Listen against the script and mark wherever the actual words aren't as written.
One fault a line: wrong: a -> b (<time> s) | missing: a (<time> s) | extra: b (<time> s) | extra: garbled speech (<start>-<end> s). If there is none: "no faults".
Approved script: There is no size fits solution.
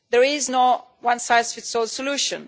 extra: one (1.0 s)
extra: all (1.7 s)